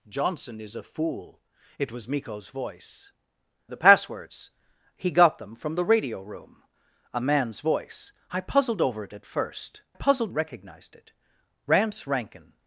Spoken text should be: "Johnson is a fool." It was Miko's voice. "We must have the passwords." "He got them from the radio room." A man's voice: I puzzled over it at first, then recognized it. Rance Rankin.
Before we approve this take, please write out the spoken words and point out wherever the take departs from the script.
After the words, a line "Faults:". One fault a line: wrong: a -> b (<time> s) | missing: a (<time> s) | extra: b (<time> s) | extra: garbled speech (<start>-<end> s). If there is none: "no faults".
"Johnson is a fool." It was Miko's voice. "The passwords." "He got them from the radio room." A man's voice: I puzzled over it at first, puzzled recognized it. Rance Rankin.
Faults:
missing: We must have (3.1 s)
wrong: then -> puzzled (9.9 s)